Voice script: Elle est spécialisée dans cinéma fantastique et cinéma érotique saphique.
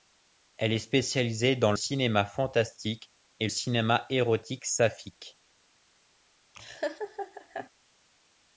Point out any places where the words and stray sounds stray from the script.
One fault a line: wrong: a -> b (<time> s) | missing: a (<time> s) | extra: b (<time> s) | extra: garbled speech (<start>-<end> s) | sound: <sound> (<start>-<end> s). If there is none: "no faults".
sound: laugh (6.5-7.7 s)